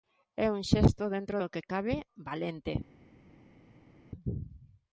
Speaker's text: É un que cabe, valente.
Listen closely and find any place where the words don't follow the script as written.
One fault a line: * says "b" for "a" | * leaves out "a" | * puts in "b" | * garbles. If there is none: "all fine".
* puts in "xesto dentro do"